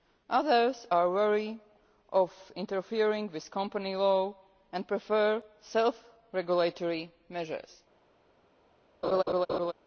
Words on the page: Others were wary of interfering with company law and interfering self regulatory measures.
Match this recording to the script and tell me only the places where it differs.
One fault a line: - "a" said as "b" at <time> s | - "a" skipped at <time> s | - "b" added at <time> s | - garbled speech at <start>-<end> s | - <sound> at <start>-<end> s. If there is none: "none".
- "were" said as "are" at 0.9 s
- "interfering" said as "prefer" at 4.9 s
- laugh at 9.0-9.7 s